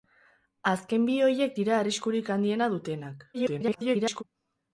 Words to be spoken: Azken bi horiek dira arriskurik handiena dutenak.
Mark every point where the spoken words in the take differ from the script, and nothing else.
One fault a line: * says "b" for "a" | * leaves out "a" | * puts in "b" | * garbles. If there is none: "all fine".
* garbles